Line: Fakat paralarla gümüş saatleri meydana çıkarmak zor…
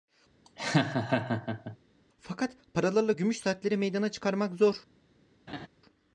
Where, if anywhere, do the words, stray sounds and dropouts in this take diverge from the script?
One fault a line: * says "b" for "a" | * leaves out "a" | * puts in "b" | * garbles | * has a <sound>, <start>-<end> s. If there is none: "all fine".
* has a laugh, 0.4-1.8 s
* has a laugh, 5.5-5.7 s